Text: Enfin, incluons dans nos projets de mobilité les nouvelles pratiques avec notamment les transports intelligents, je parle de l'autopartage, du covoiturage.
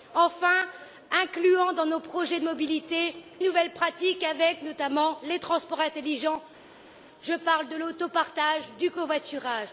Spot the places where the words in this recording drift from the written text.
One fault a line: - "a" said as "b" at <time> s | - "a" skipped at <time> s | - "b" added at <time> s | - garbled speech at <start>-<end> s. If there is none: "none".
- "les" skipped at 3.1 s